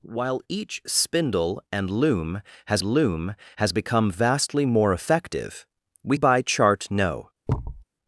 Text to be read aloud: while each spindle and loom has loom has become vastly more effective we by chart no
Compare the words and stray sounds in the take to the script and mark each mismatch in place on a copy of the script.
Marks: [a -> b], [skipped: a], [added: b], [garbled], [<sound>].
while each spindle and loom has loom has become vastly more effective we by chart no [thud]